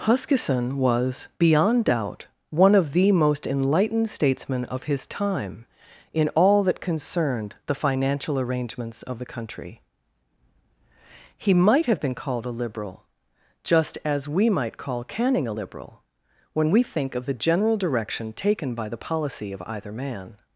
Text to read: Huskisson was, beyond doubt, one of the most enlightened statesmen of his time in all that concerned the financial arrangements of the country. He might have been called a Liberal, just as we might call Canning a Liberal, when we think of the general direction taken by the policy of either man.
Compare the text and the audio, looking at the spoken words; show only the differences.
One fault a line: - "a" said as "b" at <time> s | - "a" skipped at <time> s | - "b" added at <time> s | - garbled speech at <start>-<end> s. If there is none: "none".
none